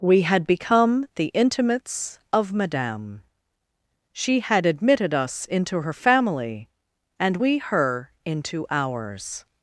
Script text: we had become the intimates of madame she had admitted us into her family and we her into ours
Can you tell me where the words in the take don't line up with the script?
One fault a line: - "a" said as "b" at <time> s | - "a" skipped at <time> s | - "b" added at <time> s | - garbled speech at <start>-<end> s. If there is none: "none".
none